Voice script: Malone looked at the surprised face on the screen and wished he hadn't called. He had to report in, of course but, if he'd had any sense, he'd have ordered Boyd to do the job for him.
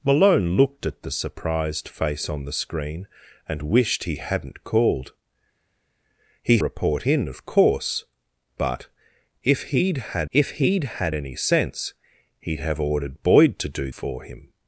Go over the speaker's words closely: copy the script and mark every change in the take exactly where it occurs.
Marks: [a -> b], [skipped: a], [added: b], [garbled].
Malone looked at the surprised face on the screen and wished he hadn't called. He [skipped: had to] report in, of course but, if he'd had [added: if he'd had] any sense, he'd have ordered Boyd to do [skipped: the job] for him.